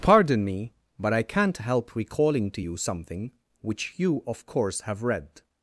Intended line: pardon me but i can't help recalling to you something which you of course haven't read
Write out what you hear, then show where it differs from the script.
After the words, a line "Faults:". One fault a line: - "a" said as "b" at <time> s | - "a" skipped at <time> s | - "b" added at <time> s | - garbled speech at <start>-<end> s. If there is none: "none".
pardon me but i can't help recalling to you something which you of course have read
Faults:
- "haven't" said as "have" at 4.8 s